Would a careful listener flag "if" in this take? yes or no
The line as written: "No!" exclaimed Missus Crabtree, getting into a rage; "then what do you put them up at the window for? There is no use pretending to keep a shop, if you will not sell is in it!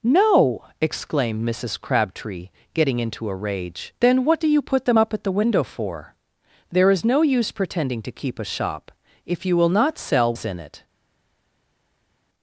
no